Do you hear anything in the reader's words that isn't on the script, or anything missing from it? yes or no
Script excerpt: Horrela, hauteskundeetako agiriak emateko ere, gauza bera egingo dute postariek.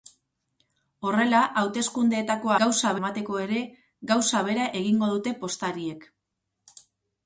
yes